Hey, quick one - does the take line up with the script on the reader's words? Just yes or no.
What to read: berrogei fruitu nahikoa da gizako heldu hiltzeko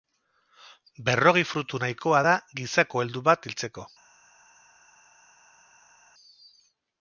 no